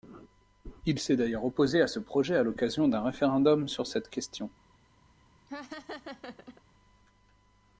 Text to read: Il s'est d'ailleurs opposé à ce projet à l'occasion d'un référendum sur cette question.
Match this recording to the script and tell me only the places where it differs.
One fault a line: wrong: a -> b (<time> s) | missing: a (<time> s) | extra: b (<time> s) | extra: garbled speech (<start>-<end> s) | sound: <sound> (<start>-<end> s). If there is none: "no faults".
sound: laugh (5.5-6.6 s)